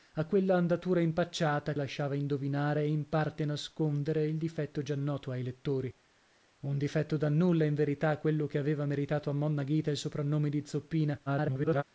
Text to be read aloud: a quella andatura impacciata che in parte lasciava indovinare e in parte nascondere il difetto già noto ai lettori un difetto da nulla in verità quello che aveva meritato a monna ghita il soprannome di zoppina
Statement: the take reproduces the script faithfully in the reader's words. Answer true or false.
false